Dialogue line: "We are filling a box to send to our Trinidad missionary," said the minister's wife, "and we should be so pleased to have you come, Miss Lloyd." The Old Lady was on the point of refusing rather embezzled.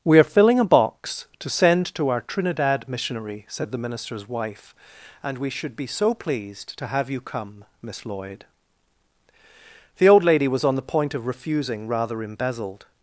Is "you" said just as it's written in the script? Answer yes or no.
yes